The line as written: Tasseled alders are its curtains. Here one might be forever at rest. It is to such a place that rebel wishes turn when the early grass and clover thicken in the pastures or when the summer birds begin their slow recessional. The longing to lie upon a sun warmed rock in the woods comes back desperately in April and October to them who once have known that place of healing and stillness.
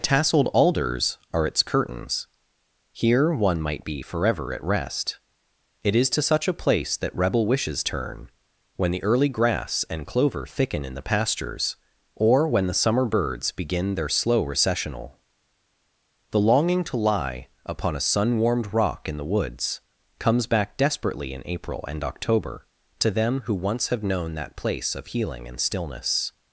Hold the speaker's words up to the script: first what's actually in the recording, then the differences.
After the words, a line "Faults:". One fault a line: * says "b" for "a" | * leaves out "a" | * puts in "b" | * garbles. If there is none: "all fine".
Tasseled alders are its curtains. Here one might be forever at rest. It is to such a place that rebel wishes turn when the early grass and clover thicken in the pastures or when the summer birds begin their slow recessional. The longing to lie upon a sun warmed rock in the woods comes back desperately in April and October to them who once have known that place of healing and stillness.
Faults:
all fine